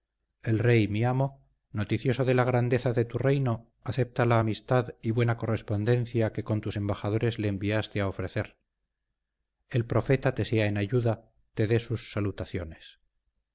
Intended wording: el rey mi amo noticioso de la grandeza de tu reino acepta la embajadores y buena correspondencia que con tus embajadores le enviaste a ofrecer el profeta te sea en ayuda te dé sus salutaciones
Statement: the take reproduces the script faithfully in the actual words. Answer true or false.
false